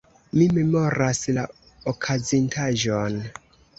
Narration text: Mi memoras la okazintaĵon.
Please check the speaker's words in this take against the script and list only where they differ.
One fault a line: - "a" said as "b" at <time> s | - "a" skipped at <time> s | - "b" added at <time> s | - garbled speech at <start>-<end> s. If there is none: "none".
none